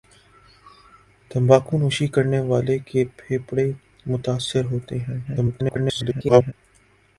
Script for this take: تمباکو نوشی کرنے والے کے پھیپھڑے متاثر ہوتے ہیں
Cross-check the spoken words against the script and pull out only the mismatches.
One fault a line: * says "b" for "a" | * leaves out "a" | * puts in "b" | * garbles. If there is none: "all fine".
* garbles